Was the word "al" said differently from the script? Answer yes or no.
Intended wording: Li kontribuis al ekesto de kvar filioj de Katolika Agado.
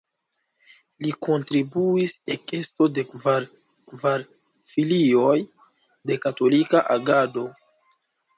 yes